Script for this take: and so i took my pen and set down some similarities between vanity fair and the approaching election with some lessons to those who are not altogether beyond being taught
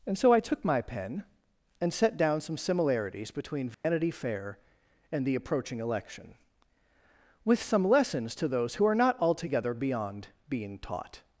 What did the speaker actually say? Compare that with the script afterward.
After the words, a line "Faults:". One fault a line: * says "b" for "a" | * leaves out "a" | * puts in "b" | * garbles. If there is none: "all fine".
and so i took my pen and set down some similarities between vanity fair and the approaching election with some lessons to those who are not altogether beyond being taught
Faults:
all fine